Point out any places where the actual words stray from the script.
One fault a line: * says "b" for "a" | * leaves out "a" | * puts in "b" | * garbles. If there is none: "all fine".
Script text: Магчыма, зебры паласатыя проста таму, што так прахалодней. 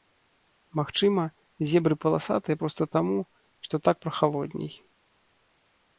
all fine